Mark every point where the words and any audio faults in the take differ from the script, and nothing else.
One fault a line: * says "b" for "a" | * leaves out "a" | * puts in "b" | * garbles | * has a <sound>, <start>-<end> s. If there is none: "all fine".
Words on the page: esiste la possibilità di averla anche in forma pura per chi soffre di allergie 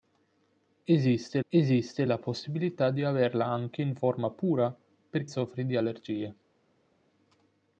* puts in "esiste"
* leaves out "chi"